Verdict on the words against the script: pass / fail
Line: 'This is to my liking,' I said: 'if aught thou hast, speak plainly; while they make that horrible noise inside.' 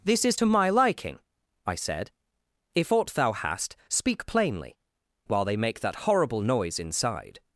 pass